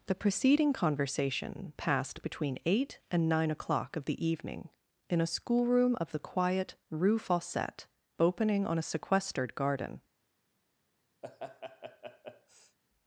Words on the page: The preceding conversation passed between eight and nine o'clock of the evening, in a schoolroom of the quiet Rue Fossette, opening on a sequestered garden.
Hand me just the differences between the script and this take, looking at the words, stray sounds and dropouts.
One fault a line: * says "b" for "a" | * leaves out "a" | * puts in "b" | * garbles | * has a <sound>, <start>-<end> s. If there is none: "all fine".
* has a laugh, 11.2-12.8 s